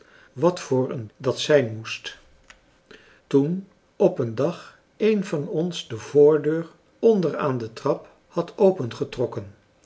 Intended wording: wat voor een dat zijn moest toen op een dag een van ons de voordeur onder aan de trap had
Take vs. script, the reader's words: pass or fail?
pass